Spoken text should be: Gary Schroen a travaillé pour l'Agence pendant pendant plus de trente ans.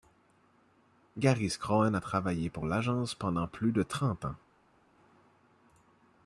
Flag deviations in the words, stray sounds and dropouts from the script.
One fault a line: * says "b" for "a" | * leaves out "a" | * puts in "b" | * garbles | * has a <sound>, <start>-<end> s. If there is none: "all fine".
* leaves out "pendant"